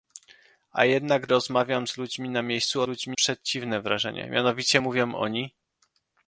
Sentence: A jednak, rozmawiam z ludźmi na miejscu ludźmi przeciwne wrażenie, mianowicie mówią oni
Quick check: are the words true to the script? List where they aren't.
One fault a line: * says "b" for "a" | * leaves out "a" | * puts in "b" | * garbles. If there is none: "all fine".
all fine